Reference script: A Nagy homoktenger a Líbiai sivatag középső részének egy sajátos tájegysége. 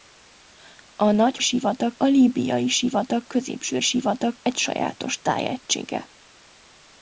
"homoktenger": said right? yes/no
no